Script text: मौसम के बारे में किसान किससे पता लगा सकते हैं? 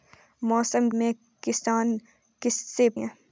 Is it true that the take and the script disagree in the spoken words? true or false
true